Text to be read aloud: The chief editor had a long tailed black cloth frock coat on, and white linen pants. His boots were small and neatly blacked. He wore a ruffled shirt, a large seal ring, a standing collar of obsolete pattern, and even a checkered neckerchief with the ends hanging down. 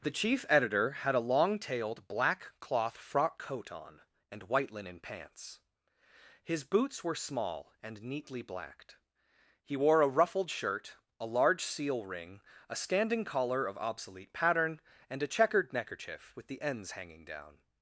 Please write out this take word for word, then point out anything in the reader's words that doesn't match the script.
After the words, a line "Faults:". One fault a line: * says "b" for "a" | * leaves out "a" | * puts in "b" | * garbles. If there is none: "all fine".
The chief editor had a long tailed black cloth frock coat on, and white linen pants. His boots were small and neatly blacked. He wore a ruffled shirt, a large seal ring, a standing collar of obsolete pattern, and a checkered neckerchief with the ends hanging down.
Faults:
* leaves out "even"